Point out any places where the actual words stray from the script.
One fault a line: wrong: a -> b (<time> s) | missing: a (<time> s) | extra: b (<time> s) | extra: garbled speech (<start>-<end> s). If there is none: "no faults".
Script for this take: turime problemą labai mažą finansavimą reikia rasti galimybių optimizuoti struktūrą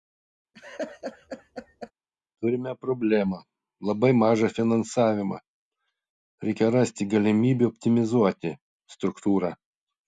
no faults